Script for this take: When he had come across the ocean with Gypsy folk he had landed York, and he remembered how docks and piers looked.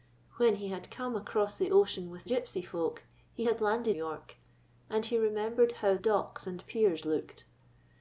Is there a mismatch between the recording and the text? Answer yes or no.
no